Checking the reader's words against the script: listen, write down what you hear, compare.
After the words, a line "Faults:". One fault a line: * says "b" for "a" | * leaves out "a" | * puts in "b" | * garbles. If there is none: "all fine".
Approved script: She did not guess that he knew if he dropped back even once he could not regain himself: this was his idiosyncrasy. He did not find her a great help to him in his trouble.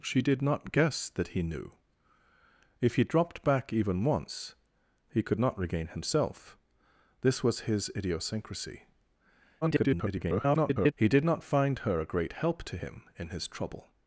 She did not guess that he knew if he dropped back even once he could not regain himself: this was his idiosyncrasy. [garbled] He did not find her a great help to him in his trouble.
Faults:
* garbles